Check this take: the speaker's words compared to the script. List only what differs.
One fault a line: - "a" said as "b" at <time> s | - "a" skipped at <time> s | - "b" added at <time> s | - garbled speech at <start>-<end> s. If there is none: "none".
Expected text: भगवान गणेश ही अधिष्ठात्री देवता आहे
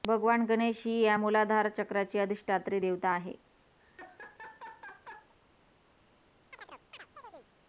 - "या मूलाधार चक्राची" added at 1.0 s